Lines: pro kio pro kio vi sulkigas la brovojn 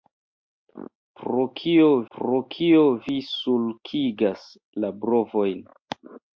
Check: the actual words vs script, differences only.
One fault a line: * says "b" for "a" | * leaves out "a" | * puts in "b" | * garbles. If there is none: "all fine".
all fine